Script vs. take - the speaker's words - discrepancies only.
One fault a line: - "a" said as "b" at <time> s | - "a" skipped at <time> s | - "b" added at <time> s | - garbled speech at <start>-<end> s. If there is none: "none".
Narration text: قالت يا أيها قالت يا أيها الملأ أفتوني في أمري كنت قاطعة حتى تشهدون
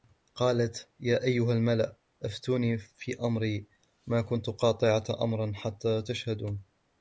- "قالت يا أيها" skipped at 1.5 s
- "ما" added at 4.1 s
- "أمرا" added at 5.2 s